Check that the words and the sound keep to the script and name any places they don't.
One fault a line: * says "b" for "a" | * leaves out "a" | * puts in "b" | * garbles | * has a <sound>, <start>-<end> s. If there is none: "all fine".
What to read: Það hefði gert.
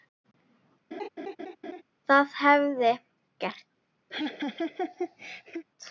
* has a laugh, 0.9-1.8 s
* has a laugh, 4.1-5.6 s